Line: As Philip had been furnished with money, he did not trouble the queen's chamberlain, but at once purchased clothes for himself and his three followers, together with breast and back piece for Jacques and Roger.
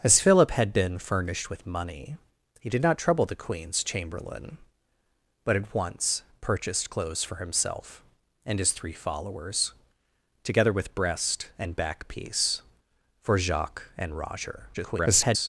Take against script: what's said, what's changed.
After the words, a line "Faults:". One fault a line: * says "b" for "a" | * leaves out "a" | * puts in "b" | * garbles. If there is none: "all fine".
As Philip had been furnished with money, he did not trouble the queen's chamberlain, but at once purchased clothes for himself and his three followers, together with breast and back piece for Jacques and Roger. [garbled]
Faults:
* garbles